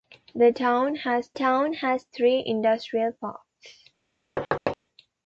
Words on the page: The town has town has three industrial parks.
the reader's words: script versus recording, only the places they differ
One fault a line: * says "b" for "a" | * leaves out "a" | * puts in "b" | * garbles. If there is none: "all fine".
all fine